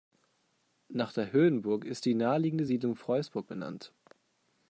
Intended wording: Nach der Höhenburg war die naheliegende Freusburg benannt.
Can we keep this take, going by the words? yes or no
no